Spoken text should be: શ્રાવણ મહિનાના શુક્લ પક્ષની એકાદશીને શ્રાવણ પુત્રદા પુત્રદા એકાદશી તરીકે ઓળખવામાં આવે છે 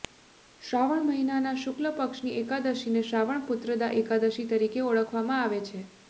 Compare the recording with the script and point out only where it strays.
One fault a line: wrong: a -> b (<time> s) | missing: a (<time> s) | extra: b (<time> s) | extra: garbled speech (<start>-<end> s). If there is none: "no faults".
missing: પુત્રદા (3.9 s)